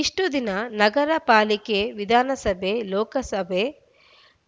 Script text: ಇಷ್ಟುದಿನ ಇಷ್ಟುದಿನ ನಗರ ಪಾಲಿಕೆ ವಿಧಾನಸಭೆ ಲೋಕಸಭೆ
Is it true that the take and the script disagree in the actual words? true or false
true